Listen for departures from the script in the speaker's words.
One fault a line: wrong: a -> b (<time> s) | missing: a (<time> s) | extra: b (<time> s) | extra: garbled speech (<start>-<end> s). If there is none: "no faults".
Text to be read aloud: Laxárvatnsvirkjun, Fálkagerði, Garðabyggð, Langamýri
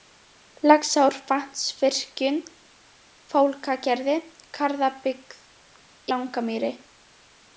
no faults